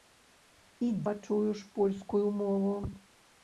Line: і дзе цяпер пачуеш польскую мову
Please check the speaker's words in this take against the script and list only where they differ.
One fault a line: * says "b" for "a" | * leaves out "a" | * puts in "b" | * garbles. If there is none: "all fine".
* leaves out "дзе цяпер"